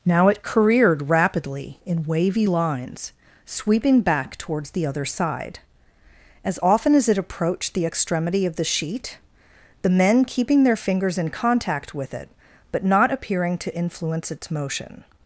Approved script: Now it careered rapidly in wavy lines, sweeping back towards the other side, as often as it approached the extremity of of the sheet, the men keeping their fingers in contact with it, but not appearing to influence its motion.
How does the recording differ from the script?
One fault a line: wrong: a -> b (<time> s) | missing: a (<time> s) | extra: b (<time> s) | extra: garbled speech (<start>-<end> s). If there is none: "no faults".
missing: of (8.6 s)